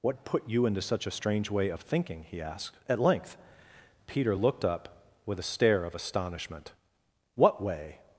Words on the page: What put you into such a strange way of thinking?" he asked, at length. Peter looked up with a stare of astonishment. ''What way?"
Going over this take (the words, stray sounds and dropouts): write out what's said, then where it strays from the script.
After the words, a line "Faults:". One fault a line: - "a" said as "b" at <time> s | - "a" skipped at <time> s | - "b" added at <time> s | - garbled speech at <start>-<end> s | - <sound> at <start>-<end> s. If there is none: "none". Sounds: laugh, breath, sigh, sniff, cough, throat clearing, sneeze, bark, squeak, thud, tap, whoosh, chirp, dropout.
What put you into such a strange way of thinking?" he asked, at length. Peter looked up with a stare of astonishment. ''What way?"
Faults:
none